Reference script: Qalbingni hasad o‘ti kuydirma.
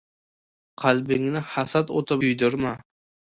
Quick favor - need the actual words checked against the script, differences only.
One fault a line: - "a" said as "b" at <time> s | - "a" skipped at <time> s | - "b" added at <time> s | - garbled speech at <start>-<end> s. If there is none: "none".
none